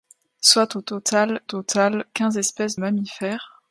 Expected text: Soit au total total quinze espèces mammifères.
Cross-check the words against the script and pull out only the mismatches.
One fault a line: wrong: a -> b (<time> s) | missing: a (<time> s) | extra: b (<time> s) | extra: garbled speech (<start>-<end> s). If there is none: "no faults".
no faults